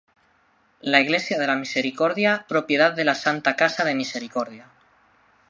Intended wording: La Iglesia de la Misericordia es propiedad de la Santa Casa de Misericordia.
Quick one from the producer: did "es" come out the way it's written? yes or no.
no